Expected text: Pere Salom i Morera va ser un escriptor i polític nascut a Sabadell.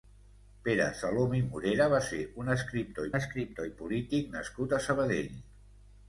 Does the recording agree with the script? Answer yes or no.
no